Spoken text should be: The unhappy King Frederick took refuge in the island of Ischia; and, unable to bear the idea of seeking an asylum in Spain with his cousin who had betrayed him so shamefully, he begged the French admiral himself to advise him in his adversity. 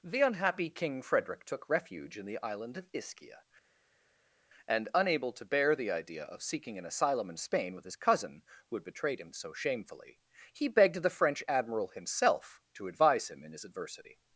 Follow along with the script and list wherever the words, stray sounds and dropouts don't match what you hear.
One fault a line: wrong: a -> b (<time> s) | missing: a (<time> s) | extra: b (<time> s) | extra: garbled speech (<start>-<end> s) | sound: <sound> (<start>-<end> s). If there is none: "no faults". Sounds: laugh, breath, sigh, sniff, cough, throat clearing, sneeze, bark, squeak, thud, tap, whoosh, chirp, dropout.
no faults